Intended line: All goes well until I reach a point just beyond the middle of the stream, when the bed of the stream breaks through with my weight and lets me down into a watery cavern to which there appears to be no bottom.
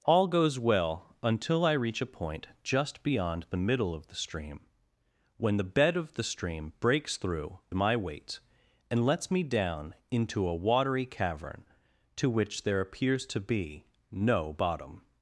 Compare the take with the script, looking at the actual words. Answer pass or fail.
fail